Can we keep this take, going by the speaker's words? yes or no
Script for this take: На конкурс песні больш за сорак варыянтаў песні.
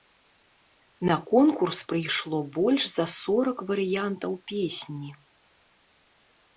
no